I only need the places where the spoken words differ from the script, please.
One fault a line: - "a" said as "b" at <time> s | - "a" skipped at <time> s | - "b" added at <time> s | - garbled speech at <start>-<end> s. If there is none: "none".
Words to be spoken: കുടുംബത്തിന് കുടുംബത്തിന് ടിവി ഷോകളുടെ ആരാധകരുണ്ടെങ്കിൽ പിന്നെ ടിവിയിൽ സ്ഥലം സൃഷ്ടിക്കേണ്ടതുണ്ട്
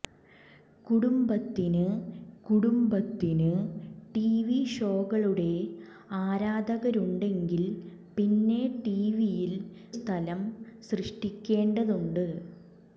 none